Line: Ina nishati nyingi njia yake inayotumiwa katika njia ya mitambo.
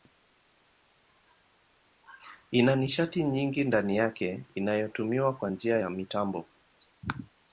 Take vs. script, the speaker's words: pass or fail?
fail